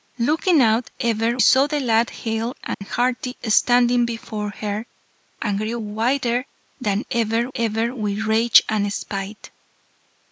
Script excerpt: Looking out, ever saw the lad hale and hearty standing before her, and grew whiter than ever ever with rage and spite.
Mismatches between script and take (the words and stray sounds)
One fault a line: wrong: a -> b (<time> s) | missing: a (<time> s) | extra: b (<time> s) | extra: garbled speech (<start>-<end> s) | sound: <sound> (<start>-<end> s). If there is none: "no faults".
sound: dropout (2.7-2.8 s)